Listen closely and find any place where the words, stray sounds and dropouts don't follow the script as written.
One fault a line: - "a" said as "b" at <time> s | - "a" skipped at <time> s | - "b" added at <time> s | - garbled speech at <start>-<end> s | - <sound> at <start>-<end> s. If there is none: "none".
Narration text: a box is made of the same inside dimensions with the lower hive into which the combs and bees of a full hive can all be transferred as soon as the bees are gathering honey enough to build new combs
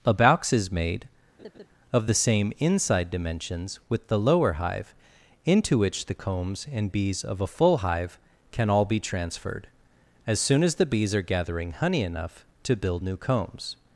- laugh at 1.4-1.7 s